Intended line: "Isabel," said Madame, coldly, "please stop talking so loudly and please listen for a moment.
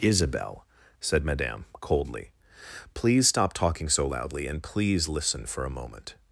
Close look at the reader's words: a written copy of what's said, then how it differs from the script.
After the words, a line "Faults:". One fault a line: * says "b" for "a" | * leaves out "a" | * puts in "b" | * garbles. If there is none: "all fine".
"Isabel," said Madame, coldly, "please stop talking so loudly and please listen for a moment.
Faults:
all fine